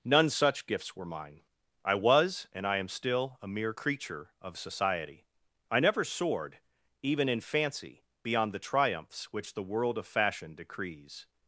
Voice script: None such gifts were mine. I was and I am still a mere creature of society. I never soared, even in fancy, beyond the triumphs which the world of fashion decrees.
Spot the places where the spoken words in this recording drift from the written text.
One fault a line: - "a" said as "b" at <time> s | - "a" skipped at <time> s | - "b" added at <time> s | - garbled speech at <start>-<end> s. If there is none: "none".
none